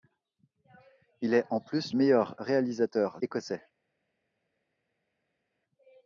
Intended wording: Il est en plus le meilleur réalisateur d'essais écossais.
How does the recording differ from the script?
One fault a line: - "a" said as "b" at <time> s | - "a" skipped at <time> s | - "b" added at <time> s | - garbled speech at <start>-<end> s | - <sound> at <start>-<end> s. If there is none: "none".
- "le" skipped at 1.9 s
- "d'essais" skipped at 3.2 s